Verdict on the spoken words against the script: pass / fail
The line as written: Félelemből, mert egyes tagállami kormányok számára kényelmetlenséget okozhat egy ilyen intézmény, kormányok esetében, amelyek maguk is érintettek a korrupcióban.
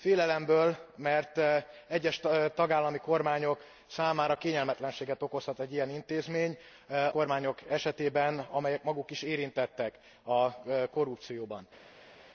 pass